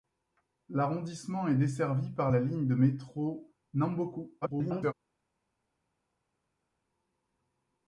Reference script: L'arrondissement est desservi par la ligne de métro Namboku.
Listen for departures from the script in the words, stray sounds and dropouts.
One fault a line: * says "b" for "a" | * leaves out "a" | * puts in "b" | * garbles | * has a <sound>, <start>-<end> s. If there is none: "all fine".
* garbles